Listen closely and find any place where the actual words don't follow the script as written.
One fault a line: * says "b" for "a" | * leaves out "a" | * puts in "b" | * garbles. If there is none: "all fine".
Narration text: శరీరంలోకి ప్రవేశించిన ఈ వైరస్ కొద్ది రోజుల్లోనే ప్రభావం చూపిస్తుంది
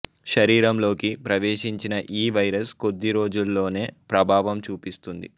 all fine